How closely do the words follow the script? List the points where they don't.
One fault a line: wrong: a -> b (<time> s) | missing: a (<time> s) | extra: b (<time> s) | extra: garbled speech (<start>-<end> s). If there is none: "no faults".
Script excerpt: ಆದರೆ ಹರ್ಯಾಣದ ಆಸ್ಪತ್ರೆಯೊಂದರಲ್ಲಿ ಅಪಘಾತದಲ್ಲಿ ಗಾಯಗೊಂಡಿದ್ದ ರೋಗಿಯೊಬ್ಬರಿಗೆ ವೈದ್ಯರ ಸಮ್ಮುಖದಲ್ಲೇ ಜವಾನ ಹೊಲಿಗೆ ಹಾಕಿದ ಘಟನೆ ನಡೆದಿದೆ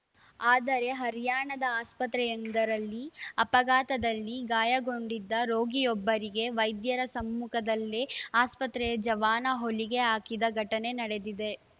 extra: ಆಸ್ಪತ್ರೆಯ (8.4 s)